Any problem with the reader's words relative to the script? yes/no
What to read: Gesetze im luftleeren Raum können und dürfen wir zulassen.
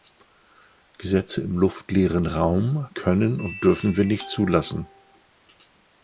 yes